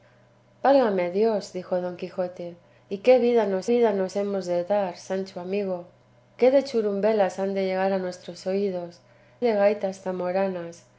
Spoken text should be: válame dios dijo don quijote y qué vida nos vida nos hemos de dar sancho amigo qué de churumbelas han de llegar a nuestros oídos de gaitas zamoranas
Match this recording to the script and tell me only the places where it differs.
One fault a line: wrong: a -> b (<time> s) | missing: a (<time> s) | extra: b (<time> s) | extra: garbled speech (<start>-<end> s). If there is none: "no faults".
no faults